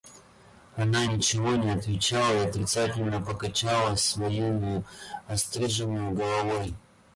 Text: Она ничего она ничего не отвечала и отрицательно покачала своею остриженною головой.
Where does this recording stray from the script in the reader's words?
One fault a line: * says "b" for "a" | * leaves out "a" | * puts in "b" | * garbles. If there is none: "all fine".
* leaves out "она ничего"